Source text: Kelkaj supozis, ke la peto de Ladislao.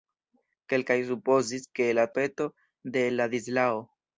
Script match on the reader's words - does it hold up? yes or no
yes